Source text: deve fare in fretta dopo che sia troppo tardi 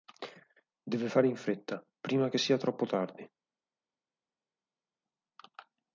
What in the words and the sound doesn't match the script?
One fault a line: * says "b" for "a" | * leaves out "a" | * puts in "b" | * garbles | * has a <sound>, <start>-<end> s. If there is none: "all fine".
* says "prima" for "dopo"